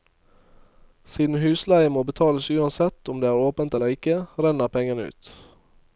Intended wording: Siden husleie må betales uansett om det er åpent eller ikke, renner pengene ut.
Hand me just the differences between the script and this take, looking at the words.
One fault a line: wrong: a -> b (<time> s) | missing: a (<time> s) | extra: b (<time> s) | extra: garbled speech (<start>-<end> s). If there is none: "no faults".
no faults